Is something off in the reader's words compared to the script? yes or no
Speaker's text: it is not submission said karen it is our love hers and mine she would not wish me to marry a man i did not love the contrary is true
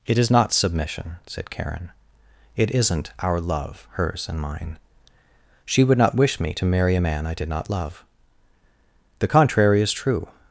yes